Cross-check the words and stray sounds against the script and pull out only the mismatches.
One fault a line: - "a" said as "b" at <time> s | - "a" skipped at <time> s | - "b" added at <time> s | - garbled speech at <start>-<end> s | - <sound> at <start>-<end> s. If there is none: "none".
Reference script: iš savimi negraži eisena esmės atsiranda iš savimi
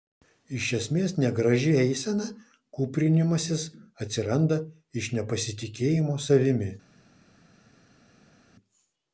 - "savimi" said as "esmės" at 0.8 s
- "esmės" said as "kūprinimasis" at 2.8 s
- "nepasitikėjimo" added at 5.2 s